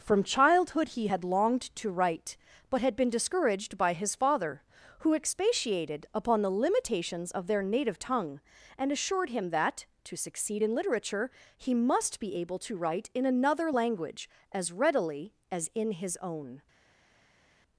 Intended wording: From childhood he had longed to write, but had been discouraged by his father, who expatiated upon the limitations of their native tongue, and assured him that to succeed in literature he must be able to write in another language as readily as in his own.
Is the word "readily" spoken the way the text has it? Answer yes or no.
yes